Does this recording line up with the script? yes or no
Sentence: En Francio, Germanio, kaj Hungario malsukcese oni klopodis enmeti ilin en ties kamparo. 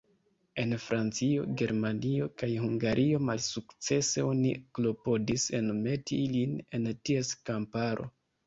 yes